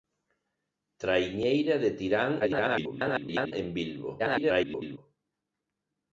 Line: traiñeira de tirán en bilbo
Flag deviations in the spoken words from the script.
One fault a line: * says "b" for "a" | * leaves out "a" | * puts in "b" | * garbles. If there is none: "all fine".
* garbles
* garbles